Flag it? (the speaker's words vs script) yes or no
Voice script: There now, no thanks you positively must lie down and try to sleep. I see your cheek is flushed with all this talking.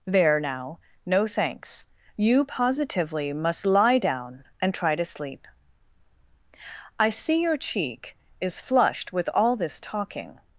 no